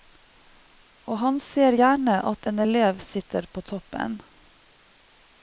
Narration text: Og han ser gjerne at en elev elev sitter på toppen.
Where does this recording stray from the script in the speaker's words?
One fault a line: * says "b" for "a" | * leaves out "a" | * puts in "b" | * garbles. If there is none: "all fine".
* leaves out "elev"